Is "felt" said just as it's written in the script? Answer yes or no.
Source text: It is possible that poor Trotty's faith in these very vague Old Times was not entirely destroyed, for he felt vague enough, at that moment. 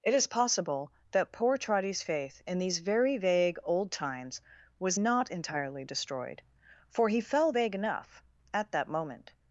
no